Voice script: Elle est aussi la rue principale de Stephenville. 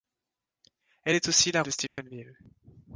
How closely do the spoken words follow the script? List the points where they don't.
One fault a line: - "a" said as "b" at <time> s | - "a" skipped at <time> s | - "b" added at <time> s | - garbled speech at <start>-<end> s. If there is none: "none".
- "rue principale" skipped at 1.6 s